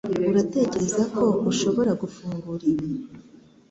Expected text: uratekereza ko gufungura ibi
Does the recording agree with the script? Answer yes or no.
no